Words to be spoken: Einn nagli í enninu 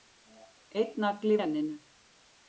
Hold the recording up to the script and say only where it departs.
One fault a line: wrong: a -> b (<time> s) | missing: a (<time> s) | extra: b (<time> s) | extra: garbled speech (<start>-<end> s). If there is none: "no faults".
no faults